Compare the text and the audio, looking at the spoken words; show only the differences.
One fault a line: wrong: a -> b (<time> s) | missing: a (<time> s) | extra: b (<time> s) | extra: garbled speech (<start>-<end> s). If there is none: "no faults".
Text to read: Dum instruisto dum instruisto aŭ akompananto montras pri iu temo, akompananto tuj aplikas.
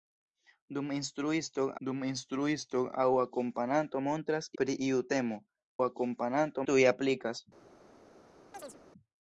no faults